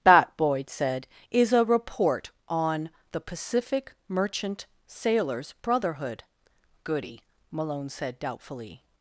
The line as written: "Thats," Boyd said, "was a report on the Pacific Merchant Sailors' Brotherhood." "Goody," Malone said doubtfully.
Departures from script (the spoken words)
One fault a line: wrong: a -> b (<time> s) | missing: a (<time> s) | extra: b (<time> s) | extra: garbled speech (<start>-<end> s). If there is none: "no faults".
wrong: Thats -> That (0.0 s)
wrong: was -> is (1.3 s)